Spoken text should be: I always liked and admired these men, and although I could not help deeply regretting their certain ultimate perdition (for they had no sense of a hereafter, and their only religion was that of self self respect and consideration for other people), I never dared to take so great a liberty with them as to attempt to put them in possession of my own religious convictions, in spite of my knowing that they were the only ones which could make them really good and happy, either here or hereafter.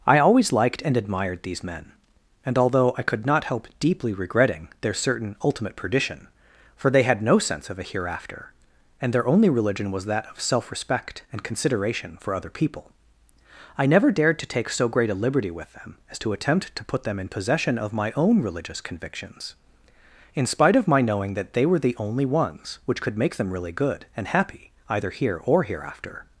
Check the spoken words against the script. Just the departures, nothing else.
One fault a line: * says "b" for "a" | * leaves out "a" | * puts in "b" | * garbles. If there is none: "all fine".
* leaves out "self"